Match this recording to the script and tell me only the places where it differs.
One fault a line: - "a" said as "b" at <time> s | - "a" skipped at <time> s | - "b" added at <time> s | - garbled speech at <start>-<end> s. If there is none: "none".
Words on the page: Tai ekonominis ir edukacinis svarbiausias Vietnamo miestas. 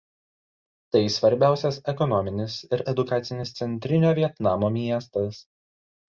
- "svarbiausias" added at 1.1 s
- "svarbiausias" said as "centrinio" at 3.6 s